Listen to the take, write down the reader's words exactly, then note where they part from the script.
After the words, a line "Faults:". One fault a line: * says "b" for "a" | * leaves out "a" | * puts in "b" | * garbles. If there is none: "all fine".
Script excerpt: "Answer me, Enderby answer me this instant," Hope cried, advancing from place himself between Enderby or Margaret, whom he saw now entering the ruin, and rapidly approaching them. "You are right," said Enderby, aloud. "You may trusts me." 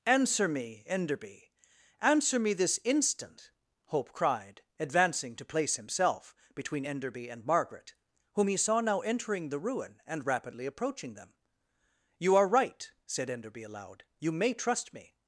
"Answer me, Enderby answer me this instant," Hope cried, advancing to place himself between Enderby and Margaret, whom he saw now entering the ruin, and rapidly approaching them. "You are right," said Enderby, aloud. "You may trust me."
Faults:
* says "to" for "from"
* says "and" for "or"
* says "trust" for "trusts"